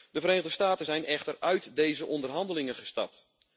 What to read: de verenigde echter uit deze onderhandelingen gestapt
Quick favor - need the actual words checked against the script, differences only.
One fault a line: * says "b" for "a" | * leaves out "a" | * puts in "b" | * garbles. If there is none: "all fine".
* puts in "staten zijn"